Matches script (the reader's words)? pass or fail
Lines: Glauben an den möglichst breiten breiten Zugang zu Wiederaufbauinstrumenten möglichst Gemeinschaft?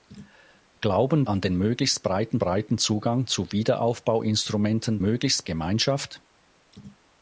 pass